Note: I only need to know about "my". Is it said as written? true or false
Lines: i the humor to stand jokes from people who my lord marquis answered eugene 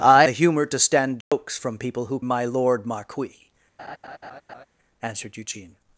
true